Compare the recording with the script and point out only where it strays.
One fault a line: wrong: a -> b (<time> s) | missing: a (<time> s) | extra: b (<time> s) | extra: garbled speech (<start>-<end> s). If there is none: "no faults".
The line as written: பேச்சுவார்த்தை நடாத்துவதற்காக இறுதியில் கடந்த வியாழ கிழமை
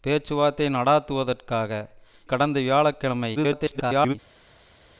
missing: இறுதியில் (1.7 s)
extra: garbled speech (3.3-4.2 s)